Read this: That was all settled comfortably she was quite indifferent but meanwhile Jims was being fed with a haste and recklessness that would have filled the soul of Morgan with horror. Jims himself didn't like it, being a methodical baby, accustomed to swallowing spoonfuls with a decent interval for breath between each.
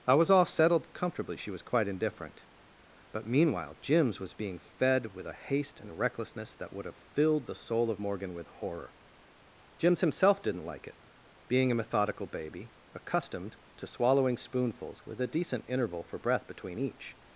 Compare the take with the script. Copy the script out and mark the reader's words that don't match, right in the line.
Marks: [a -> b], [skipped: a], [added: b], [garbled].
[That -> I] was all settled comfortably she was quite indifferent but meanwhile Jims was being fed with a haste and recklessness that would have filled the soul of Morgan with horror. Jims himself didn't like it, being a methodical baby, accustomed to swallowing spoonfuls with a decent interval for breath between each.